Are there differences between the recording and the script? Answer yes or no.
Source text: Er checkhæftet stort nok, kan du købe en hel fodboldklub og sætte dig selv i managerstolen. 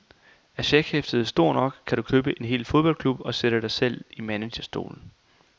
no